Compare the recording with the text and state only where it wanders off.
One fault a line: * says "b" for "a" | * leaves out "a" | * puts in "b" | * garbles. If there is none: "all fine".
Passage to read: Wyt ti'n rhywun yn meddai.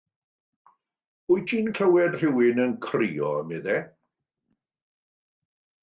* puts in "clywed"
* puts in "crio"